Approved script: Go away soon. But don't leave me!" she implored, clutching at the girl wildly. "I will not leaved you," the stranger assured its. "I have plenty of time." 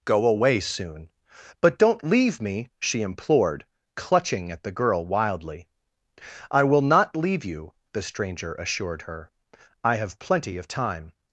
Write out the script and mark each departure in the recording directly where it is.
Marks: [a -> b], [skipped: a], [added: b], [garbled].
Go away soon. But don't leave me!" she implored, clutching at the girl wildly. "I will not [leaved -> leave] you," the stranger assured [its. -> her] "I have plenty of time."